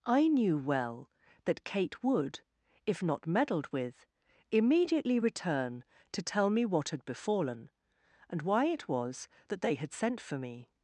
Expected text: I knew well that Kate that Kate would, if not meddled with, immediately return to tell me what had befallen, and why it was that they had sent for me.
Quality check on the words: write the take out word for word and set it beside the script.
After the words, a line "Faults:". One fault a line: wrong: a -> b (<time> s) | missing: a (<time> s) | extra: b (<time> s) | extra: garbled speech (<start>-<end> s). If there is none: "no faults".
I knew well that Kate would, if not meddled with, immediately return to tell me what had befallen, and why it was that they had sent for me.
Faults:
missing: that Kate (2.0 s)